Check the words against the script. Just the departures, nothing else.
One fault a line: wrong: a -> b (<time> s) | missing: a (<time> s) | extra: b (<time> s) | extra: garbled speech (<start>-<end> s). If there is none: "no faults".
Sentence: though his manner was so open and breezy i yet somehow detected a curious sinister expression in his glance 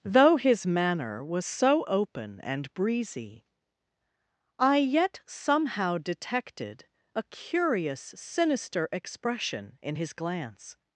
no faults